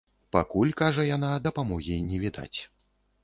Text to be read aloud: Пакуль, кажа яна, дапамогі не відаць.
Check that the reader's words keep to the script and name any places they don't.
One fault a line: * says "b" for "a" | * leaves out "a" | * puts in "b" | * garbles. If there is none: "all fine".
all fine